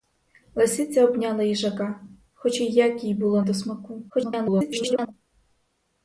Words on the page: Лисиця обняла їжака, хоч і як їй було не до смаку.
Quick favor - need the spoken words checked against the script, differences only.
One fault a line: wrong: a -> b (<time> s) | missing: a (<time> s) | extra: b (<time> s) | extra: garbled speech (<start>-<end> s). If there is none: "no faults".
missing: не (3.4 s)
extra: garbled speech (4.1-5.1 s)